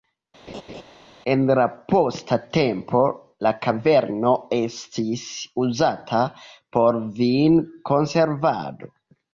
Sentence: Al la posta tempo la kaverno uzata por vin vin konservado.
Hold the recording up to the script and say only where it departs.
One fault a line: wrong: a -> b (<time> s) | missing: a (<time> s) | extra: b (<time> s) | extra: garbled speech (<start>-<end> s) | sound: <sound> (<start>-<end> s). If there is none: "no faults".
sound: laugh (0.5-0.8 s)
wrong: Al -> En (1.3 s)
extra: estis (4.6 s)
missing: vin (7.6 s)